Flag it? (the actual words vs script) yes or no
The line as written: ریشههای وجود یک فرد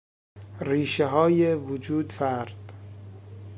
yes